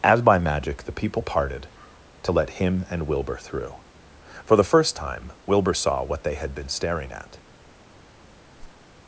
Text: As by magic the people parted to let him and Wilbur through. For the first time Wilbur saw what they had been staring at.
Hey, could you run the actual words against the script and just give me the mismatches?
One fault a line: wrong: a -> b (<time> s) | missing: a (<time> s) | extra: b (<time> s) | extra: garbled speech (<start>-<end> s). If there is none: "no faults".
no faults